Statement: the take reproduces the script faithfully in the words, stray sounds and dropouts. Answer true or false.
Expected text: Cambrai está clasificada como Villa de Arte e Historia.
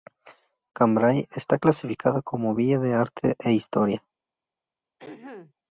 false